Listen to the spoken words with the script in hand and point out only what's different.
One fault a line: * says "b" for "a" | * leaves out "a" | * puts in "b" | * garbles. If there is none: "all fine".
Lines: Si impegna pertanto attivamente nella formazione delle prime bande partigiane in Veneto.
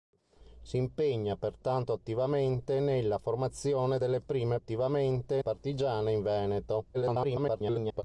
* says "attivamente" for "bande"
* garbles